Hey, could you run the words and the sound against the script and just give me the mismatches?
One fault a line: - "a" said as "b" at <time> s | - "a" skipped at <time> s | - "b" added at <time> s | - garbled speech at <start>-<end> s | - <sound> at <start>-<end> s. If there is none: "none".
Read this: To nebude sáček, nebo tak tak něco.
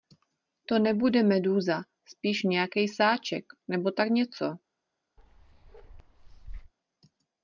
- "medúza spíš nějakej" added at 1.2 s
- "tak" skipped at 4.1 s
- bark at 5.2-6.7 s